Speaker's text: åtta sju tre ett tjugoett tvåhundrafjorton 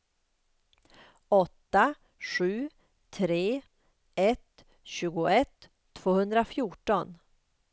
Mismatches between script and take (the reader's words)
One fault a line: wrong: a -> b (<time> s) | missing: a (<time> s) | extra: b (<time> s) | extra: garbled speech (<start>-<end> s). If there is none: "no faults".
no faults